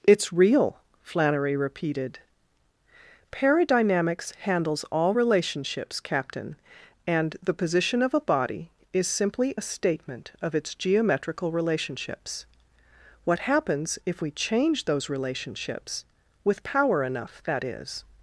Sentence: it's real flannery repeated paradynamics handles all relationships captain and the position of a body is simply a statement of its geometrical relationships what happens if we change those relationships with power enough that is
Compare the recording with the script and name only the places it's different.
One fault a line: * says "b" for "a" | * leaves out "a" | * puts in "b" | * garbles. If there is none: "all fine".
all fine